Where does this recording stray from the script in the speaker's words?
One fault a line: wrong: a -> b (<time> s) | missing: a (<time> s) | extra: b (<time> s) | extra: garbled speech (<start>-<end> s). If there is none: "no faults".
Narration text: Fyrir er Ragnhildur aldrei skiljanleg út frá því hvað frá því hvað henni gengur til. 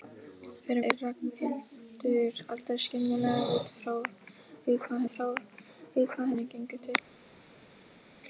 no faults